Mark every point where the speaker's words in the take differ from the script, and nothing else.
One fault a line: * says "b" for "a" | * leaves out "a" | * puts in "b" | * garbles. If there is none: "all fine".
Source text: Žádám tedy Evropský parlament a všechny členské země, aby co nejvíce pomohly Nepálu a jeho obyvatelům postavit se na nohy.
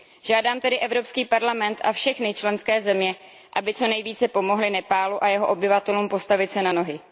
all fine